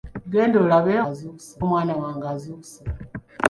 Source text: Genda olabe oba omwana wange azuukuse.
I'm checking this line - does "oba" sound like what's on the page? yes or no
no